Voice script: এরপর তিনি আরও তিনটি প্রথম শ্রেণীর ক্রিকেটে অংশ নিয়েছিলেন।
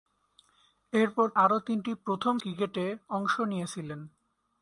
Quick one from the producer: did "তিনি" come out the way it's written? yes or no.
no